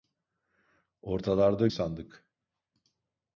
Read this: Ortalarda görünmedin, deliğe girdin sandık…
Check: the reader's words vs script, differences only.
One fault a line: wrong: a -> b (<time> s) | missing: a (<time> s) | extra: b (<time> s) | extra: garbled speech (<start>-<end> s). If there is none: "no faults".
missing: görünmedin deliğe girdin (1.7 s)